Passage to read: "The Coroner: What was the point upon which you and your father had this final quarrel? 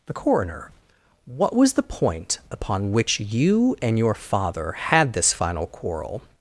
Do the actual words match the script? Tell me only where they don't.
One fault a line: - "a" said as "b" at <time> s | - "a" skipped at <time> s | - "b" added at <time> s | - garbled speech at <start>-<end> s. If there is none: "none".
none